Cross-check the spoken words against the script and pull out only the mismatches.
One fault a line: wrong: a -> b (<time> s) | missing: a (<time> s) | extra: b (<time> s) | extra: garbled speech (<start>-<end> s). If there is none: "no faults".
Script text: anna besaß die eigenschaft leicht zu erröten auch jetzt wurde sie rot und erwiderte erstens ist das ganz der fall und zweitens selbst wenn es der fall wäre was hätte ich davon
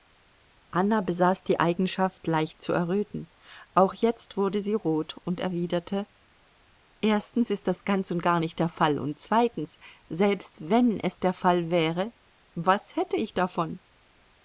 extra: und gar nicht (8.1 s)